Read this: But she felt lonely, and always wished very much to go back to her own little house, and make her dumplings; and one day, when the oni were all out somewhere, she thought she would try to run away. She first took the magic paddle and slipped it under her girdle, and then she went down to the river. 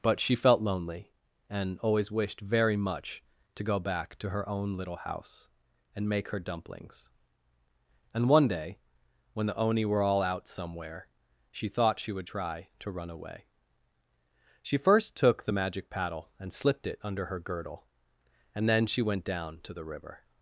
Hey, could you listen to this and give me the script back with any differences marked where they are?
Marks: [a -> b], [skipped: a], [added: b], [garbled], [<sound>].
But she felt lonely, and always wished very much to go back to her own little house, and make her dumplings; and one day, when the oni were all out somewhere, she thought she would try to run away. She first took the magic paddle and slipped it under her girdle, and then she went down to the river.